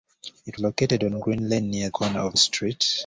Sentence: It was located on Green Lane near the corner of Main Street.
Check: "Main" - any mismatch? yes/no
yes